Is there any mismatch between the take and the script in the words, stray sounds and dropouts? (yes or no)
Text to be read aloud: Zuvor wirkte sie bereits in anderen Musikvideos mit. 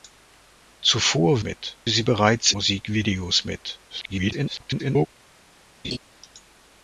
yes